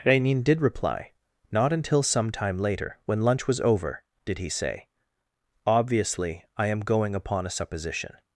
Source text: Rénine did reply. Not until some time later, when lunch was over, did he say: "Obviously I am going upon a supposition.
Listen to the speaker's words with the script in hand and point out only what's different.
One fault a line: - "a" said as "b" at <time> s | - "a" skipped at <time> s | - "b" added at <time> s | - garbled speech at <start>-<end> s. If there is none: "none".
none